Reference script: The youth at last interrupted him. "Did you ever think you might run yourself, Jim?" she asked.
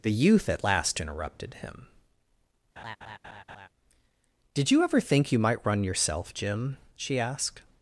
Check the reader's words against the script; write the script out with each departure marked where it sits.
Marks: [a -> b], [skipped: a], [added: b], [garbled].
The youth at last interrupted him. "Did you ever think you might run yourself, Jim?" she asked.